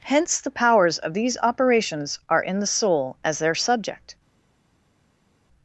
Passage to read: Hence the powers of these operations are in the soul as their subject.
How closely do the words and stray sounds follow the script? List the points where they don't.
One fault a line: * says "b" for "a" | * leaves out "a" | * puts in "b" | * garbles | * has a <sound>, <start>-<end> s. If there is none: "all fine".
all fine